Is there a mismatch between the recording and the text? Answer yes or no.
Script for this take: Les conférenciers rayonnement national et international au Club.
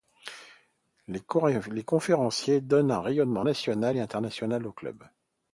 yes